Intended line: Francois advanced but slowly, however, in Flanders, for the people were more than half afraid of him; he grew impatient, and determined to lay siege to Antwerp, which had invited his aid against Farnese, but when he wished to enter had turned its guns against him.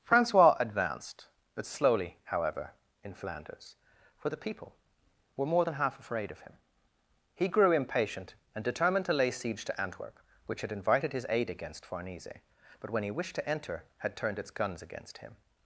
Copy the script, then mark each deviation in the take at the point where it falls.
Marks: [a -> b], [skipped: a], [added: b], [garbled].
Francois advanced but slowly, however, in Flanders, for the people were more than half afraid of him; he grew impatient, and determined to lay siege to Antwerp, which had invited his aid against Farnese, but when he wished to enter had turned its guns against him.